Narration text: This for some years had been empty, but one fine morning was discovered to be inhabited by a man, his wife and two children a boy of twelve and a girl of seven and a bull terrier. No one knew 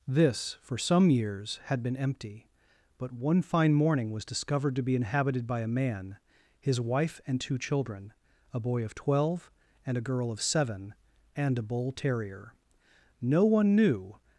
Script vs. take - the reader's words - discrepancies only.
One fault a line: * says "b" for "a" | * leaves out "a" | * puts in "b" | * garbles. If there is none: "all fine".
all fine